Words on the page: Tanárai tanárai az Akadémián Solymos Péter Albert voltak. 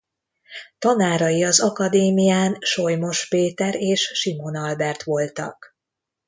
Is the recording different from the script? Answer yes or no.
yes